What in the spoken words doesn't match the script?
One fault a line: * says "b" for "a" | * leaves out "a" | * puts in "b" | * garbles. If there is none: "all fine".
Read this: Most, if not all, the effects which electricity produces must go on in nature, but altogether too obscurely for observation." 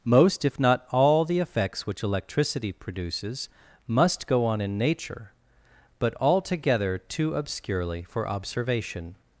all fine